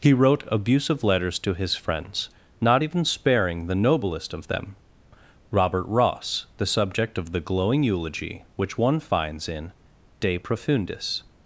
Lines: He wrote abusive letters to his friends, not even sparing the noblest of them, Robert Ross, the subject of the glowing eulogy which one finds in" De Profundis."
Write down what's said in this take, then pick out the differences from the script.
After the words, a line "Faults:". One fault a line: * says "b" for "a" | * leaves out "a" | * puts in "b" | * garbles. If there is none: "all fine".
He wrote abusive letters to his friends, not even sparing the noblest of them, Robert Ross, the subject of the glowing eulogy which one finds in" De Profundis."
Faults:
all fine